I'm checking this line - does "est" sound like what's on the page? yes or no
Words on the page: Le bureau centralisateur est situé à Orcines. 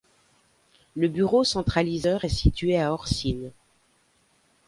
yes